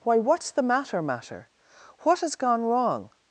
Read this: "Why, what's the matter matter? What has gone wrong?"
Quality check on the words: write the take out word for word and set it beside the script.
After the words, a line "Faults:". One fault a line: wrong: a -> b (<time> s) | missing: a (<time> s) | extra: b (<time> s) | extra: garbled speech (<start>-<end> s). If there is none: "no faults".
"Why, what's the matter matter? What has gone wrong?"
Faults:
no faults